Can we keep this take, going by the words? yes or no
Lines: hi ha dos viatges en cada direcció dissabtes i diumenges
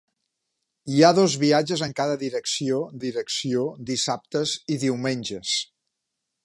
no